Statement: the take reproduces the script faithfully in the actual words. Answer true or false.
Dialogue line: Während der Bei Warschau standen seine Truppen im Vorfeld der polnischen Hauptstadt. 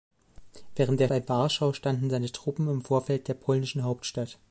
true